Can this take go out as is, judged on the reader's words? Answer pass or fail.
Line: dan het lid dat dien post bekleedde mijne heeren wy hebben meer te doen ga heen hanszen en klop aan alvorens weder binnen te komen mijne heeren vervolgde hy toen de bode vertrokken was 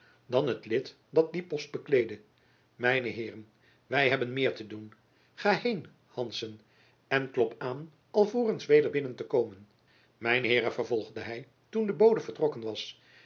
pass